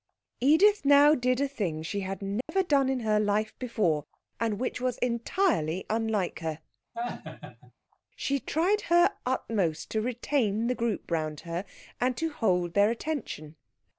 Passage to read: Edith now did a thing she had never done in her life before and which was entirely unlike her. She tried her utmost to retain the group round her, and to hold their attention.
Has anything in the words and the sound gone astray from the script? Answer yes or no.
yes